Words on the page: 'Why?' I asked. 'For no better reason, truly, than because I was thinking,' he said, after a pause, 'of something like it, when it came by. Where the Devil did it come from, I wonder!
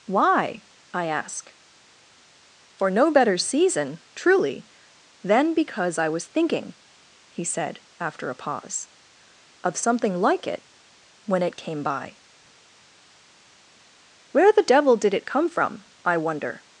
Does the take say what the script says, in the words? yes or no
no